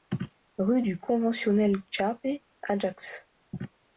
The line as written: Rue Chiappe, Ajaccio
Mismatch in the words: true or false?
true